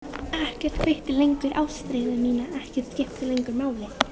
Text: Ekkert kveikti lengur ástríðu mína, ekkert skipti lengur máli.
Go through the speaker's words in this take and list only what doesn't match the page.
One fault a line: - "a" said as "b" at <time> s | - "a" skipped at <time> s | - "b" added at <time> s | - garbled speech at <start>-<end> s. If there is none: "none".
none